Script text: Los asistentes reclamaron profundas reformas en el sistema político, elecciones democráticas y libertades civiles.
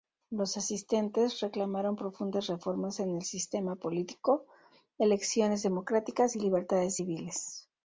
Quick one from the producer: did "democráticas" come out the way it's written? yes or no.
yes